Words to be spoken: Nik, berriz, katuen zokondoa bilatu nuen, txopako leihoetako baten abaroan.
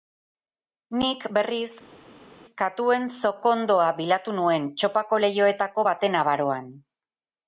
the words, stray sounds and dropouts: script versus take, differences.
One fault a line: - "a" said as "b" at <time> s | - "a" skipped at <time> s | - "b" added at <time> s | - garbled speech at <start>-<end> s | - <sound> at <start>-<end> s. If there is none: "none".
none